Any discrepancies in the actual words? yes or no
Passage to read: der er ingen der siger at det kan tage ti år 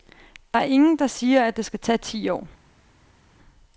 yes